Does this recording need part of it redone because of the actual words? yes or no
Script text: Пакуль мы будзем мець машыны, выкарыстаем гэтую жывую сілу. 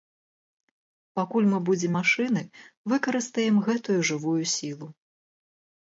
yes